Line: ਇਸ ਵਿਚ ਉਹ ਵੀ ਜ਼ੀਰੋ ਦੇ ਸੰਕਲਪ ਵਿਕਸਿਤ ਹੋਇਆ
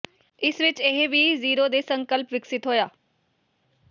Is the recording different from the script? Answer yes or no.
yes